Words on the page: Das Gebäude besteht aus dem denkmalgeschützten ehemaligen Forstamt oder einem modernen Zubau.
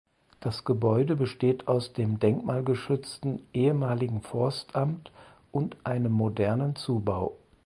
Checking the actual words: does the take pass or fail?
fail